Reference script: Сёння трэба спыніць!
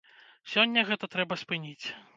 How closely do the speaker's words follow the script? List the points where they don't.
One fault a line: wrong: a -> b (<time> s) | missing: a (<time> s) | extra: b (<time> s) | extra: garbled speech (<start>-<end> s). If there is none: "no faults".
extra: гэта (0.9 s)